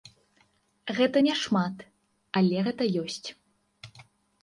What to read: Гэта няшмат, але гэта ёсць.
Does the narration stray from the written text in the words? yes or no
no